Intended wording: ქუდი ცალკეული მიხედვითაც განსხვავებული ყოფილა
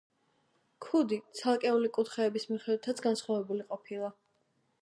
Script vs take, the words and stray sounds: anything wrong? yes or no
yes